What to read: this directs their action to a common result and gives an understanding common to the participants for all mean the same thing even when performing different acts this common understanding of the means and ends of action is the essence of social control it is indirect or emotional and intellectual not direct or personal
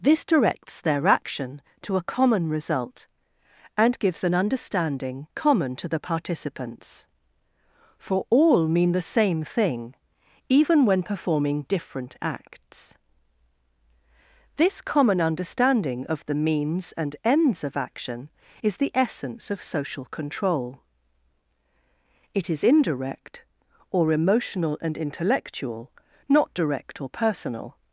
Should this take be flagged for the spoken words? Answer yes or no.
no